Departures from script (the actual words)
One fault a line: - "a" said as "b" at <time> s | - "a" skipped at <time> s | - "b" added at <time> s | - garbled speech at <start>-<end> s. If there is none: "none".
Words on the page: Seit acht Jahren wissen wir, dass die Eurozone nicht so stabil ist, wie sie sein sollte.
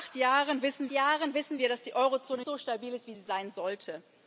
- "Jahren wissen" added at 0.9 s
- "nicht" skipped at 2.4 s